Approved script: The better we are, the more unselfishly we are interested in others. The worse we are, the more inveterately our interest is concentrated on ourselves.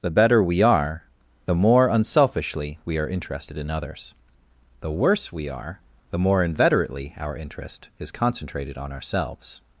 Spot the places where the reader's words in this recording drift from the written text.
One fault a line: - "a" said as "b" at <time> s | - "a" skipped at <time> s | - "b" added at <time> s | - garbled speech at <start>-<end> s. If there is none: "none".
none